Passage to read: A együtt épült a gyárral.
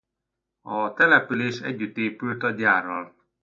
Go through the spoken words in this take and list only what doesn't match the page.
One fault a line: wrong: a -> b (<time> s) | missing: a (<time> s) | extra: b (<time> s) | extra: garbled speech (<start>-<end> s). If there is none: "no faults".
extra: település (0.9 s)